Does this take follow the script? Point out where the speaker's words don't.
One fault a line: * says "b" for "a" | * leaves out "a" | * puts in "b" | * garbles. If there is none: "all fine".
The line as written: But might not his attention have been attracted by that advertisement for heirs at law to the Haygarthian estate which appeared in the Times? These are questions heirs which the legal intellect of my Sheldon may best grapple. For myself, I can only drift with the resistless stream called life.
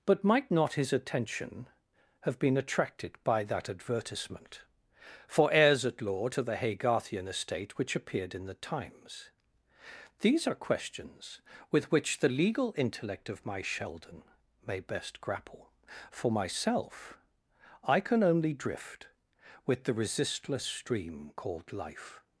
* says "with" for "heirs"